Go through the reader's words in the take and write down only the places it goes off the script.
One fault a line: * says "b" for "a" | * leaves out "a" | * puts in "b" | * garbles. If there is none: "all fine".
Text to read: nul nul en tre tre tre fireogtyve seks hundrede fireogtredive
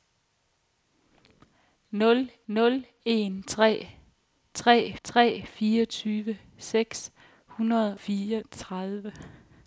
all fine